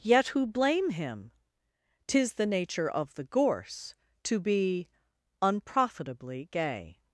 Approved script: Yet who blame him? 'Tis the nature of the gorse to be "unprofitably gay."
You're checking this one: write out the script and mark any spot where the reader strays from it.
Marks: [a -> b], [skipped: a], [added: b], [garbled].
Yet who blame him? 'Tis the nature of the gorse to be "unprofitably gay."